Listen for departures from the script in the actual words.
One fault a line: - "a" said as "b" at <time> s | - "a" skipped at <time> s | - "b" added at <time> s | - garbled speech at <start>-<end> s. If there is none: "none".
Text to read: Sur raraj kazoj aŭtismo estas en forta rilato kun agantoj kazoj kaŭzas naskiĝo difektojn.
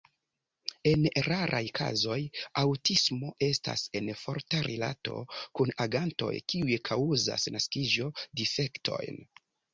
- "Sur" said as "En" at 0.9 s
- "kazoj" said as "kiuj" at 6.6 s